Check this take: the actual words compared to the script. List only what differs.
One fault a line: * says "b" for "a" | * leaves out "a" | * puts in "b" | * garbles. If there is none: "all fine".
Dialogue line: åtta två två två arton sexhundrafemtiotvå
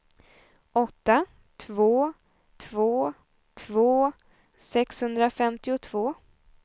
* leaves out "arton"